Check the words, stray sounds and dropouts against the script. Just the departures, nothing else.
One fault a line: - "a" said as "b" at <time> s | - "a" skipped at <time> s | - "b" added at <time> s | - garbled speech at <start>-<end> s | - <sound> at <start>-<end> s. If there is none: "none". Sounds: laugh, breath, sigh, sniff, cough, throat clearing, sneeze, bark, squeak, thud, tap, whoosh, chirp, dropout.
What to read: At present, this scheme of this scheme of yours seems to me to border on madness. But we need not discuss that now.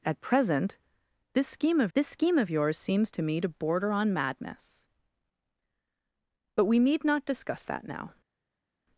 none